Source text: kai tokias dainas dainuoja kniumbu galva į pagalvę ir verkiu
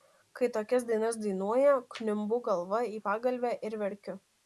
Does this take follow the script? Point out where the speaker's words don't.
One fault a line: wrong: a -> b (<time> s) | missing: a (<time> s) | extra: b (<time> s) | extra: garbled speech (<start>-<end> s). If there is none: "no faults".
no faults